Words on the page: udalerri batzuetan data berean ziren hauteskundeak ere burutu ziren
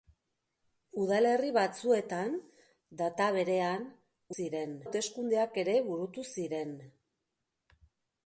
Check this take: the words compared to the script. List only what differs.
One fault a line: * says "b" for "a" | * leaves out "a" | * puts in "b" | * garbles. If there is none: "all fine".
all fine